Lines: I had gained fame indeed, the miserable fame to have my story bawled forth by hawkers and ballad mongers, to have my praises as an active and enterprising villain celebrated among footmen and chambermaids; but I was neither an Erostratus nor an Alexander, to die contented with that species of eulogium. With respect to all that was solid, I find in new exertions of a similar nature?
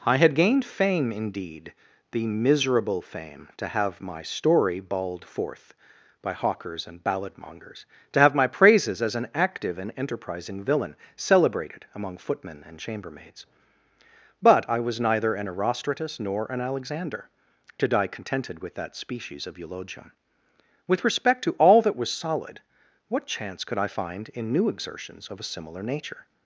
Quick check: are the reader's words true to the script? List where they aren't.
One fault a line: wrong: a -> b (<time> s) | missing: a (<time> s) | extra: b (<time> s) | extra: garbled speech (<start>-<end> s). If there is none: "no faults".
extra: what chance could (23.1 s)